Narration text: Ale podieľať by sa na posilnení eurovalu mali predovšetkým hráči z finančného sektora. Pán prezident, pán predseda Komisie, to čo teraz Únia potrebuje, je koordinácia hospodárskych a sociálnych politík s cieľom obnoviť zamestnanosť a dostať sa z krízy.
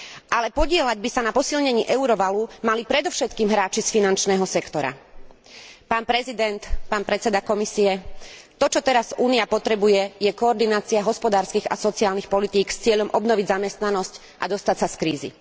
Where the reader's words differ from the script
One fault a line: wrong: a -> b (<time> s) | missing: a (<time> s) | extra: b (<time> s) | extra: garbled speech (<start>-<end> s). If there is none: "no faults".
no faults